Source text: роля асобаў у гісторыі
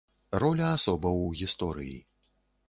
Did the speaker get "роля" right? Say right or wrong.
right